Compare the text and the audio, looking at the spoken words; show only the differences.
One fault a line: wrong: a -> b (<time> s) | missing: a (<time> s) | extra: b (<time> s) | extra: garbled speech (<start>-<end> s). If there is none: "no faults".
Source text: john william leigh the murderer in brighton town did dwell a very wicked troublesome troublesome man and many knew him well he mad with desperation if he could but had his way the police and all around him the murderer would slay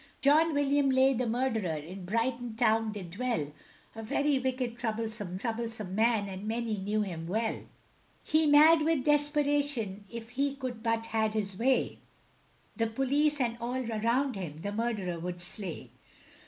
no faults